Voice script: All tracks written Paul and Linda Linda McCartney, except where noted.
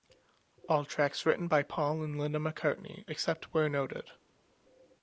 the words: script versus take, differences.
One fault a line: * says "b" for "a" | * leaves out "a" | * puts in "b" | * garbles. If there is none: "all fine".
* puts in "by"
* leaves out "Linda"